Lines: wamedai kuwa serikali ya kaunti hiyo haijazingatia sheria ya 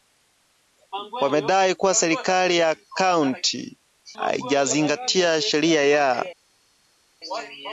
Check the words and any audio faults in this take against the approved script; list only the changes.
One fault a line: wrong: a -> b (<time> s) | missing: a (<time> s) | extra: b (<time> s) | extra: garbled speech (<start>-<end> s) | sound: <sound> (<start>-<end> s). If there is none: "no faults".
missing: hiyo (3.8 s)